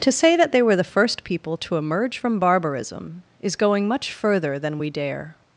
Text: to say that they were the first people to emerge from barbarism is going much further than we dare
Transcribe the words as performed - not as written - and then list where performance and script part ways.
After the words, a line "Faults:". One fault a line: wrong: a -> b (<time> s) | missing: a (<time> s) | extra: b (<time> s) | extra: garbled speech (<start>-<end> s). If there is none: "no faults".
to say that they were the first people to emerge from barbarism is going much further than we dare
Faults:
no faults